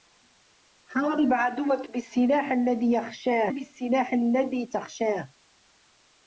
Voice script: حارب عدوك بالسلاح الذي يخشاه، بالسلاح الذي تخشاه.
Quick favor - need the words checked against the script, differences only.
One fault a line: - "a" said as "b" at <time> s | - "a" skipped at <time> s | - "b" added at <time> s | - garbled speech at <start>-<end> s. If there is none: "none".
none